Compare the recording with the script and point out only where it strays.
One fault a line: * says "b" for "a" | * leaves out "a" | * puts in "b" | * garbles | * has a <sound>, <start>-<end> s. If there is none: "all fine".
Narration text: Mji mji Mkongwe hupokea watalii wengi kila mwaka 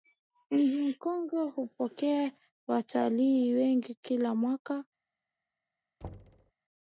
* leaves out "mji"
* has a thud, 6.0-6.5 s